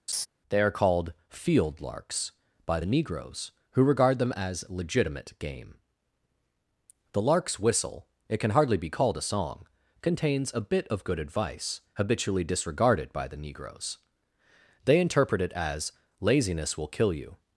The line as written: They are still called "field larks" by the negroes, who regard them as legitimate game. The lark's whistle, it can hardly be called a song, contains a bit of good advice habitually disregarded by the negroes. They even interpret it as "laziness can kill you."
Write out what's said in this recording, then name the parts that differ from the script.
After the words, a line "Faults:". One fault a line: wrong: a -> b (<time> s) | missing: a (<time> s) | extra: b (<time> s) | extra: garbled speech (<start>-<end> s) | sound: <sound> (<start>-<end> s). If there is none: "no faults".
They are called "field larks" by the negroes, who regard them as legitimate game. The lark's whistle, it can hardly be called a song, contains a bit of good advice habitually disregarded by the negroes. They interpret it as "laziness will kill you."
Faults:
sound: laugh (0.1-0.3 s)
missing: still (0.7 s)
missing: even (15.0 s)
wrong: can -> will (16.8 s)